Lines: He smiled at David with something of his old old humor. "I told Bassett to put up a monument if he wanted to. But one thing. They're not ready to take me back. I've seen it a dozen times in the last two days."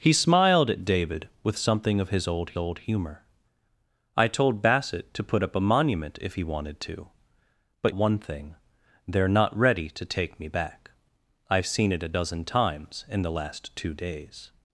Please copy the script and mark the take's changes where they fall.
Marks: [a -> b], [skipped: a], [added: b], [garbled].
He smiled at David with something of his old old humor. "I told Bassett to put up a monument if he wanted to. But one thing. They're not ready to take me back. I've seen it a dozen times in the last two days."